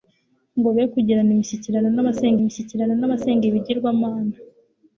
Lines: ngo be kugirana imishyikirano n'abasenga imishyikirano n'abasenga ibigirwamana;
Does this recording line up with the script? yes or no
yes